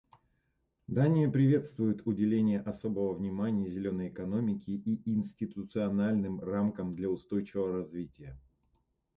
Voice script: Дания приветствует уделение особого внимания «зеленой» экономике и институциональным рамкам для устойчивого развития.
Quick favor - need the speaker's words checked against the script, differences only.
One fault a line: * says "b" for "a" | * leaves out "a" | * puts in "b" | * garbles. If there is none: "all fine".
all fine